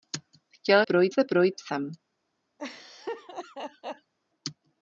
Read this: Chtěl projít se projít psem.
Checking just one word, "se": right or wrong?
right